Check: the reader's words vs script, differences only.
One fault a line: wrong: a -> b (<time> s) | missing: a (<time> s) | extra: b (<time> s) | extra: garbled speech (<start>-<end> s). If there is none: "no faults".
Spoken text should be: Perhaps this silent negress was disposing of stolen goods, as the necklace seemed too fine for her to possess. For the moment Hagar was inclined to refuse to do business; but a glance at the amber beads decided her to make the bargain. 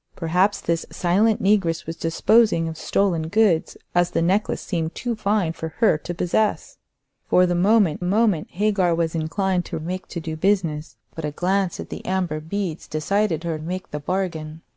extra: moment (8.0 s)
wrong: refuse -> make (9.8 s)
missing: to (13.6 s)